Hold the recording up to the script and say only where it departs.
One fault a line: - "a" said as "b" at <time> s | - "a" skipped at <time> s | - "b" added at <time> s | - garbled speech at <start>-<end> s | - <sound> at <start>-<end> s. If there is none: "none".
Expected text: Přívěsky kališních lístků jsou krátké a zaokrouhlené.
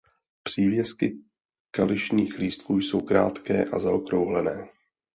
none